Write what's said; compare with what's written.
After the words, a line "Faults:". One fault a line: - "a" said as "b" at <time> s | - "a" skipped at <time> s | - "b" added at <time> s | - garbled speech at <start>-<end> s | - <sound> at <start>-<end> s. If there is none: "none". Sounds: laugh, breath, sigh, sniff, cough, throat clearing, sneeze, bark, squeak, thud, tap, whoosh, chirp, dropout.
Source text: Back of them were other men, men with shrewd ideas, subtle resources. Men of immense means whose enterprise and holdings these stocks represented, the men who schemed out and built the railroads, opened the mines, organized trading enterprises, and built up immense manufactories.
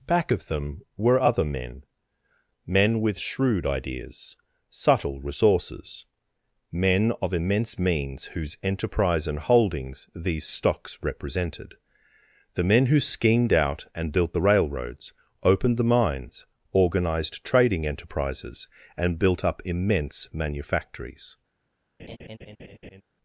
Back of them were other men, men with shrewd ideas, subtle resources. Men of immense means whose enterprise and holdings these stocks represented, the men who schemed out and built the railroads, opened the mines, organized trading enterprises, and built up immense manufactories.
Faults:
- laugh at 22.0-23.0 s